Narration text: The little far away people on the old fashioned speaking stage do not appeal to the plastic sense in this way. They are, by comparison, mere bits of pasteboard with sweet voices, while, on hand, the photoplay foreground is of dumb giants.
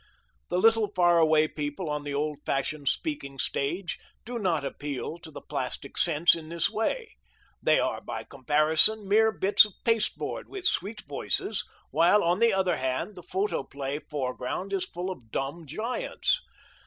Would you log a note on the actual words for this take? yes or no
yes